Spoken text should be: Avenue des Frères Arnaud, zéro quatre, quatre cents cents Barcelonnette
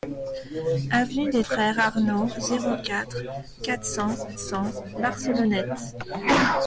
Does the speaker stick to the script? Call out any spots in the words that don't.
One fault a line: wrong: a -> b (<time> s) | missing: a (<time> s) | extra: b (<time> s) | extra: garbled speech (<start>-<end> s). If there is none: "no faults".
no faults